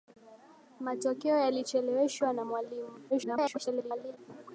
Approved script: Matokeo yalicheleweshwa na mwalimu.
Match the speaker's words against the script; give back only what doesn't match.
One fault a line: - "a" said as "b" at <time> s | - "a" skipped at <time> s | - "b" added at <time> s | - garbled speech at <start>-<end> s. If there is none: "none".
- garbled speech at 3.1-4.2 s